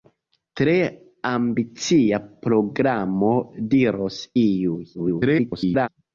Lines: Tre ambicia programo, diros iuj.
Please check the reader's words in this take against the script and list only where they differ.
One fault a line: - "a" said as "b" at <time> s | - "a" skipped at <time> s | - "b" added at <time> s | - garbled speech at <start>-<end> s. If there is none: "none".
- garbled speech at 4.9-5.9 s